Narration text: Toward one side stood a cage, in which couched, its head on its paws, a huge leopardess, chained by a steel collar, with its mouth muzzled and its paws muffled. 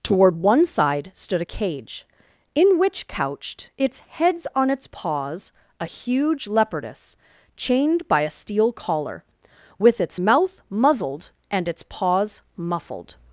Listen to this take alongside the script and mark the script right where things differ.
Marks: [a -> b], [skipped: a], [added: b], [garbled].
Toward one side stood a cage, in which couched, its [head -> heads] on its paws, a huge leopardess, chained by a steel collar, with its mouth muzzled and its paws muffled.